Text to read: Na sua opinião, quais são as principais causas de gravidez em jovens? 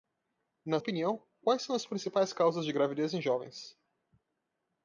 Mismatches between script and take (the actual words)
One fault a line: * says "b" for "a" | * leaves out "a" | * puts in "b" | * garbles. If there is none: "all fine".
* leaves out "sua"